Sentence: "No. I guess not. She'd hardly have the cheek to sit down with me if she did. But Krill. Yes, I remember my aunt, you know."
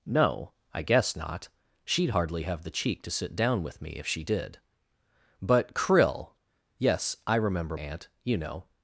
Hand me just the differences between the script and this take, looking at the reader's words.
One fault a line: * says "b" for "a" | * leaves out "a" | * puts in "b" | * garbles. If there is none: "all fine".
* leaves out "my"